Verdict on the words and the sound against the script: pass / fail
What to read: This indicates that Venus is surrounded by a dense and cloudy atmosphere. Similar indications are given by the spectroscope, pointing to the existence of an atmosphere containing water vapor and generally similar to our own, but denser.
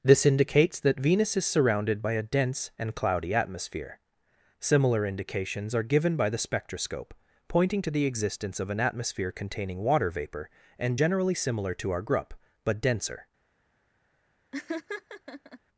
fail